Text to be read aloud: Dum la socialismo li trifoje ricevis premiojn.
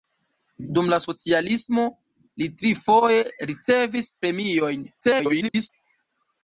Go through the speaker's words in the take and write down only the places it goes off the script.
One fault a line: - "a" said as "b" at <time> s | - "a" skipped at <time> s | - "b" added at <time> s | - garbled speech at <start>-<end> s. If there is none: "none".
- garbled speech at 5.0-5.7 s